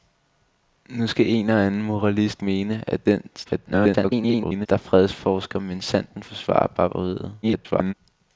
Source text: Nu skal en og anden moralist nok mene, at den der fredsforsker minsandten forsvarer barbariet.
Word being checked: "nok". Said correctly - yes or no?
no